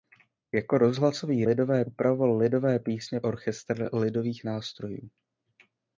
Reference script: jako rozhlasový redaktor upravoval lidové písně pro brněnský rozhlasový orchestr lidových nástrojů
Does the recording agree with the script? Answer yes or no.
no